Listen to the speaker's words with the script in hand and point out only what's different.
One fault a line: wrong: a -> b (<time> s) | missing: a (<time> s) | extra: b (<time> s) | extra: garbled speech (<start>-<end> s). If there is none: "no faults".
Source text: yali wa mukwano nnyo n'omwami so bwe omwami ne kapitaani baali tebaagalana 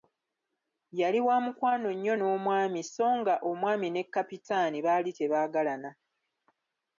wrong: bwe -> nga (3.2 s)